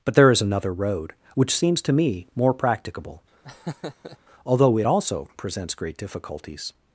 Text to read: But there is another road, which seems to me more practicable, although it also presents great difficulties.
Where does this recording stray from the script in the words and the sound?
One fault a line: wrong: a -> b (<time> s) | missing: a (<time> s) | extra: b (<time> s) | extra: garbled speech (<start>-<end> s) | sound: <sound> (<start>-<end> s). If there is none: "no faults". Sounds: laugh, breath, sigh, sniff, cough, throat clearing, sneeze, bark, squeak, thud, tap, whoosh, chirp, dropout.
sound: laugh (3.4-4.2 s)